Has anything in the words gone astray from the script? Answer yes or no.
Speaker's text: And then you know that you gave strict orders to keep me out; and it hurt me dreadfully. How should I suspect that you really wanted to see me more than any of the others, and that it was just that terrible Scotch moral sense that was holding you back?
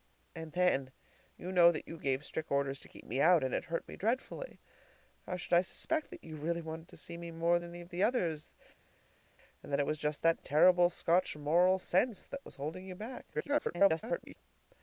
yes